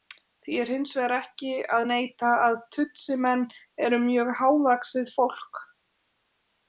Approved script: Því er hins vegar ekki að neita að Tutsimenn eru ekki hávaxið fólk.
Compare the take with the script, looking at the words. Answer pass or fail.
fail